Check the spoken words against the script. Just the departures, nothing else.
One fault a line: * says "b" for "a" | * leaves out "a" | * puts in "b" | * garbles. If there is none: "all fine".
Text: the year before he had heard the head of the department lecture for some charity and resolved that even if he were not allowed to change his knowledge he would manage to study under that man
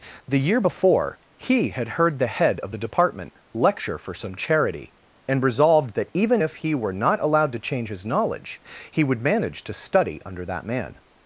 all fine